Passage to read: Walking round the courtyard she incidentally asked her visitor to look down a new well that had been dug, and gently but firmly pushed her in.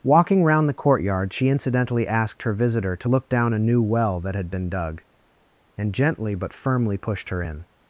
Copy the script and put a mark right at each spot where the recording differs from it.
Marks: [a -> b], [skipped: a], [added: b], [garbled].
Walking round the courtyard she incidentally asked her visitor to look down a new well that had been dug, and gently but firmly pushed her in.